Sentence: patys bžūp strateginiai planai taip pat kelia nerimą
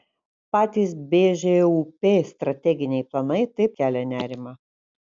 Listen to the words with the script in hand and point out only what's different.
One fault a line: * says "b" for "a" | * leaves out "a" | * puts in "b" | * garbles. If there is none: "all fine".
* leaves out "pat"